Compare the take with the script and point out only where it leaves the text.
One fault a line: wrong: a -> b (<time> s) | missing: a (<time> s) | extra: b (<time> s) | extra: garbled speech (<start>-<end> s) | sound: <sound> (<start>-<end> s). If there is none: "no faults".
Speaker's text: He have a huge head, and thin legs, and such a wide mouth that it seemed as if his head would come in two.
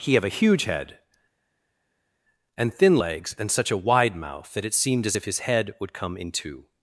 no faults